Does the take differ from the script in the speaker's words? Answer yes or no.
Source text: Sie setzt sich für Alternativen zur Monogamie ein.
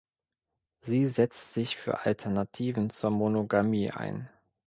no